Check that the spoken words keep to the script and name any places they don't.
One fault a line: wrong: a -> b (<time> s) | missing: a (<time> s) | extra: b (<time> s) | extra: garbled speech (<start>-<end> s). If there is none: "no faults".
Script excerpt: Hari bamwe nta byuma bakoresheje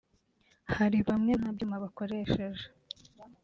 no faults